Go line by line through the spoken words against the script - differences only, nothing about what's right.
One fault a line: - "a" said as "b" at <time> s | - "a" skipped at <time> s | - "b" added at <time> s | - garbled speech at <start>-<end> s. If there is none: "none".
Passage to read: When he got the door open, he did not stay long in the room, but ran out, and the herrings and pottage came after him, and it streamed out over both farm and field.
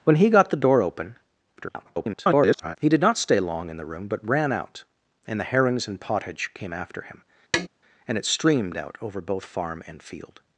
- garbled speech at 1.6-2.8 s